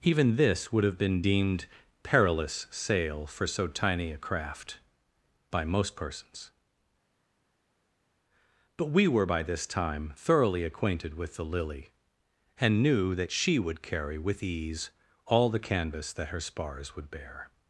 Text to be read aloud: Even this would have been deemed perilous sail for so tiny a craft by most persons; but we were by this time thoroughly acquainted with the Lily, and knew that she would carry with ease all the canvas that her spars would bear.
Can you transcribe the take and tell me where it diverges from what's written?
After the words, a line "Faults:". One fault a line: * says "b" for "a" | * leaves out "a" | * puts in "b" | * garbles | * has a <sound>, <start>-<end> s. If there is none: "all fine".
Even this would have been deemed perilous sail for so tiny a craft by most persons; but we were by this time thoroughly acquainted with the Lily, and knew that she would carry with ease all the canvas that her spars would bear.
Faults:
all fine